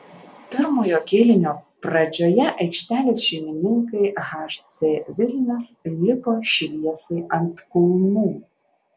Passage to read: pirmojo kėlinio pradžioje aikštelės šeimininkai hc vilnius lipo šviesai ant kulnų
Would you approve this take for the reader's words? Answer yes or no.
yes